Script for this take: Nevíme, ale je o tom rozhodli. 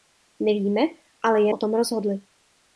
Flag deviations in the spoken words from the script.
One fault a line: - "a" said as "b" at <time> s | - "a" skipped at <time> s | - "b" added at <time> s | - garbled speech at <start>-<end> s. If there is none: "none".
none